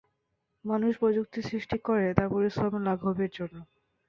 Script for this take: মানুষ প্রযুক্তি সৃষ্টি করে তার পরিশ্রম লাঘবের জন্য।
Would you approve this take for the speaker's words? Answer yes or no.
yes